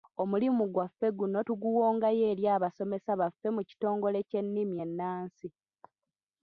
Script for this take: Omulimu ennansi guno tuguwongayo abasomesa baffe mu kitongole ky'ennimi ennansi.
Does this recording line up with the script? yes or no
no